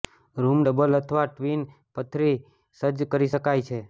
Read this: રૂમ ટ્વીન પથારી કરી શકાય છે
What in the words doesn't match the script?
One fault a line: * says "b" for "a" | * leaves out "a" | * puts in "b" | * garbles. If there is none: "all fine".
* puts in "ડબલ અથવા"
* puts in "સજ્જ"